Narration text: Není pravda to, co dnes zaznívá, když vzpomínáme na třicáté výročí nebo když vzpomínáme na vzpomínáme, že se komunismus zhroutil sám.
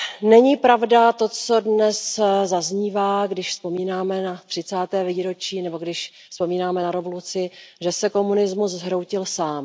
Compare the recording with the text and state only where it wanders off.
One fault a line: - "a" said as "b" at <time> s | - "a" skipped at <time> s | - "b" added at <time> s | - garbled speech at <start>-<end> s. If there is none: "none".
- "vzpomínáme" said as "revoluci" at 6.9 s